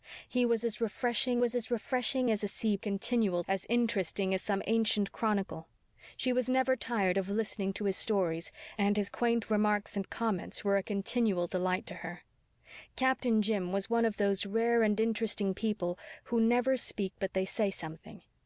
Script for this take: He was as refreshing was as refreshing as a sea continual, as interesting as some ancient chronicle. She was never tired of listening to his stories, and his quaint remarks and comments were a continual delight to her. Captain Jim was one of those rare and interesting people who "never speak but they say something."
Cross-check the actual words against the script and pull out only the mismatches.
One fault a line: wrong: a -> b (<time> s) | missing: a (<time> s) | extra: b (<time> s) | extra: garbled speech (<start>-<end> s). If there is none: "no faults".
no faults